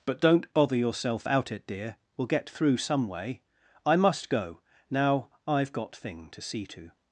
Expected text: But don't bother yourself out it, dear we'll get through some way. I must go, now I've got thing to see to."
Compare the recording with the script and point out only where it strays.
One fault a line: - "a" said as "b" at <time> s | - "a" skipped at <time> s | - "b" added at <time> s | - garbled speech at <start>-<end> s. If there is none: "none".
none